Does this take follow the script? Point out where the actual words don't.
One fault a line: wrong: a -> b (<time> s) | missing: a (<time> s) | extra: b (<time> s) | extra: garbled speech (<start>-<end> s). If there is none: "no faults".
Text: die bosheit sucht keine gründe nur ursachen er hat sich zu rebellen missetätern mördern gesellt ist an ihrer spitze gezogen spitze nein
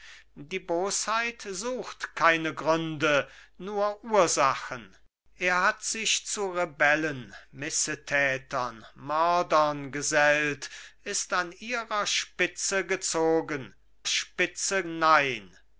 no faults